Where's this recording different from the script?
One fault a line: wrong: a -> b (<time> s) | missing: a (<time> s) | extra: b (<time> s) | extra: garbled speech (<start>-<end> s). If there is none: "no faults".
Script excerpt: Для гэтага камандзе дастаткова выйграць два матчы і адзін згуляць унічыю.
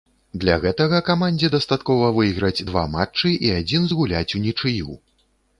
no faults